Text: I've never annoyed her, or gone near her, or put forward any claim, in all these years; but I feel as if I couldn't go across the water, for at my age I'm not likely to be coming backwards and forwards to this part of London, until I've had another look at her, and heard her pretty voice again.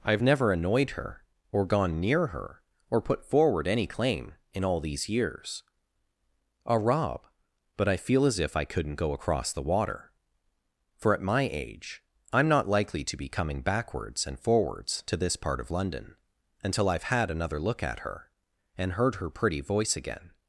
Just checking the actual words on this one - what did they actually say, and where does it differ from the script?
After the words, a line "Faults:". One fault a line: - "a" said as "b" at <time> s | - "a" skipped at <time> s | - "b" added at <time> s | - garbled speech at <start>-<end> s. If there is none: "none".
I've never annoyed her, or gone near her, or put forward any claim, in all these years; a rob but I feel as if I couldn't go across the water, for at my age I'm not likely to be coming backwards and forwards to this part of London, until I've had another look at her, and heard her pretty voice again.
Faults:
- "a rob" added at 6.7 s